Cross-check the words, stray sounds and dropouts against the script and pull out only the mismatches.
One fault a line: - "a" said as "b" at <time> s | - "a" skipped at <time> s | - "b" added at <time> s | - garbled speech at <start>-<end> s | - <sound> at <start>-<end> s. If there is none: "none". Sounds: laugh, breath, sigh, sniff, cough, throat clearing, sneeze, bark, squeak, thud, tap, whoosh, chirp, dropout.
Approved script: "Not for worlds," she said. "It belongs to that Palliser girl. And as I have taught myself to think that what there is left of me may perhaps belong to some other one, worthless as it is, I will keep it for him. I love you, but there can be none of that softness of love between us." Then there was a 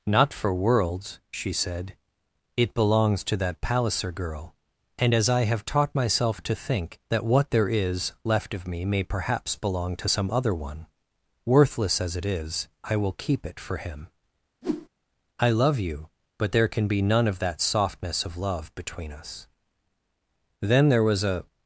- whoosh at 14.6-14.9 s